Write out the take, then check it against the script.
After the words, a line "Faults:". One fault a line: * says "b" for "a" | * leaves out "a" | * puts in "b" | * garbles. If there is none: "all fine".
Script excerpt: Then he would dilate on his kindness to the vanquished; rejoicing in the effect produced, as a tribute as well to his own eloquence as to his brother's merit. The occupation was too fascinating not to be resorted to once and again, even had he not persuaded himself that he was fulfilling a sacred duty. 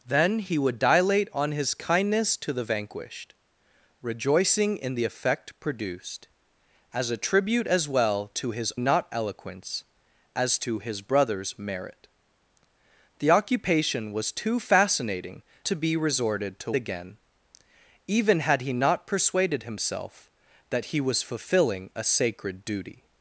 Then he would dilate on his kindness to the vanquished; rejoicing in the effect produced, as a tribute as well to his not eloquence as to his brother's merit. The occupation was too fascinating to be resorted to again, even had he not persuaded himself that he was fulfilling a sacred duty.
Faults:
* says "not" for "own"
* leaves out "not"
* leaves out "once and"